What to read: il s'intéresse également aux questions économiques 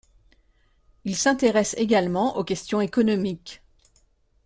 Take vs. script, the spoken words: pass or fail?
pass